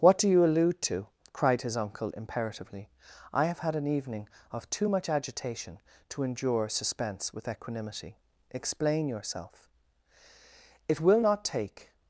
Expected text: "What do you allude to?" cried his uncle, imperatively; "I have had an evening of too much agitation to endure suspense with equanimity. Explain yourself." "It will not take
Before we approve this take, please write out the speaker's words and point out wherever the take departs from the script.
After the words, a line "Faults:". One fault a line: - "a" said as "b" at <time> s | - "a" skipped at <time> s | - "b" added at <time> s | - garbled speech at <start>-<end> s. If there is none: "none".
"What do you allude to?" cried his uncle, imperatively; "I have had an evening of too much agitation to endure suspense with equanimity. Explain yourself." "It will not take
Faults:
none